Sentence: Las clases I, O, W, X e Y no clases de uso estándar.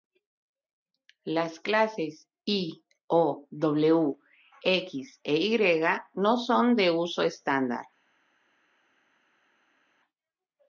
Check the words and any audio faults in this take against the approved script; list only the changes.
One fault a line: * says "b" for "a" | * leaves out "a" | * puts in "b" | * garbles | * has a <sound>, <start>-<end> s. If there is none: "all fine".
* says "son" for "clases"